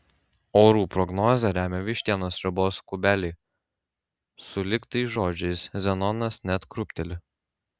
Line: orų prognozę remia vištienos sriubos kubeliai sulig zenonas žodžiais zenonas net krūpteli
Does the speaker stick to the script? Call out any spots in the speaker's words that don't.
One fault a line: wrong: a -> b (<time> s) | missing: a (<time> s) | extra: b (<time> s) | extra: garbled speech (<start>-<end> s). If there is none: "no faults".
wrong: zenonas -> tais (5.0 s)